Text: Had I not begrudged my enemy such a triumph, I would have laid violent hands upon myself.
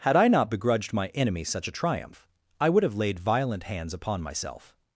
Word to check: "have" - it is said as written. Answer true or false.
true